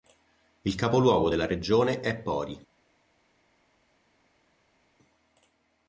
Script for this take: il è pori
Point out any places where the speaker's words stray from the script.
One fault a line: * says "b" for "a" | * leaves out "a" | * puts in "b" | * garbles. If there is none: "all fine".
* puts in "capoluogo della regione"